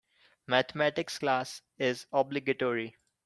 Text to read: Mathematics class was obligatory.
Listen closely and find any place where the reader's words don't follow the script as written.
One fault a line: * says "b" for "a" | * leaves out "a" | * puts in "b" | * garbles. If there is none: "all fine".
* says "is" for "was"